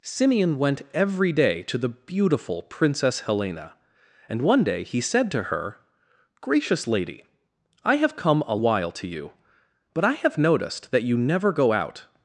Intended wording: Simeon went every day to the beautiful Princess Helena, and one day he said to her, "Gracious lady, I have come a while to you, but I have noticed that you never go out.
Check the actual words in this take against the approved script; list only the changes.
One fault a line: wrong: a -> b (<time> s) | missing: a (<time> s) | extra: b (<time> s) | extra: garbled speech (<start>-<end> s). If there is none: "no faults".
no faults